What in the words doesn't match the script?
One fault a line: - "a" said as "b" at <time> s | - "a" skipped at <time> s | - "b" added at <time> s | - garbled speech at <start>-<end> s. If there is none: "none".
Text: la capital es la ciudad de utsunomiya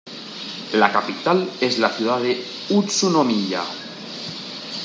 none